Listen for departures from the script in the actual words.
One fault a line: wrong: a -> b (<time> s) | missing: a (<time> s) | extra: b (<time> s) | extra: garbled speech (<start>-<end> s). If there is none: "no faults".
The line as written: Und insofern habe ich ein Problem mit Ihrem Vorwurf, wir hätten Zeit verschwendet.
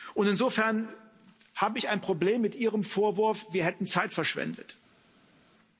no faults